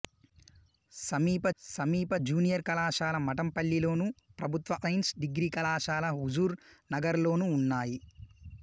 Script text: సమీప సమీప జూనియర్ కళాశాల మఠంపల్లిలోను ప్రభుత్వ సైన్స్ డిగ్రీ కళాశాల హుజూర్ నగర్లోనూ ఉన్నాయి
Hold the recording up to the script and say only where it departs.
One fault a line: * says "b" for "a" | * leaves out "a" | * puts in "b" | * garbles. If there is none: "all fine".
all fine